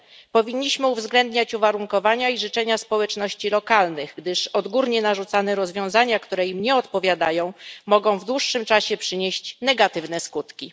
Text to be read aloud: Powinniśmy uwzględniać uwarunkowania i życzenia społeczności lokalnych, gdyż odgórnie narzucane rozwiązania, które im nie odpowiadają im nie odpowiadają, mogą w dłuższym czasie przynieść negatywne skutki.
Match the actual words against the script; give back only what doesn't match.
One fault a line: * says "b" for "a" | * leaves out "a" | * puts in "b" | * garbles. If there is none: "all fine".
* leaves out "im nie odpowiadają"